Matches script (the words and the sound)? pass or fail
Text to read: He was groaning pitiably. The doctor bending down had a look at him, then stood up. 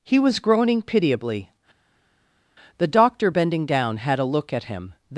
fail